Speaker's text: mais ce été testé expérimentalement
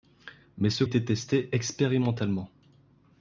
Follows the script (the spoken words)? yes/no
yes